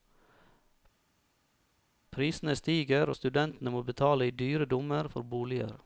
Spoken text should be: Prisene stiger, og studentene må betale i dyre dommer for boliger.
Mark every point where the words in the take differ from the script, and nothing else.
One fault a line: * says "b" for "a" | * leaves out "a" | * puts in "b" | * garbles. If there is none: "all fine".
all fine